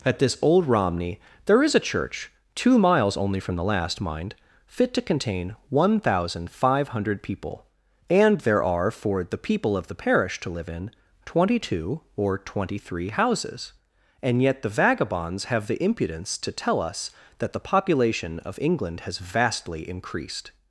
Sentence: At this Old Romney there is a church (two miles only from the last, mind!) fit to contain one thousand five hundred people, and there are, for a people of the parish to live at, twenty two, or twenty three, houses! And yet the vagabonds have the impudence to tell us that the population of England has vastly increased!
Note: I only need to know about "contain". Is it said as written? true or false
true